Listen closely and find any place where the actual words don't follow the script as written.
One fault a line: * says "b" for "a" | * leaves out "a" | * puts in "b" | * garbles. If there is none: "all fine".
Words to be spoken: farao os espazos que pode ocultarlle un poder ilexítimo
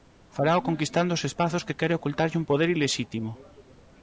* puts in "conquistando"
* says "quere" for "pode"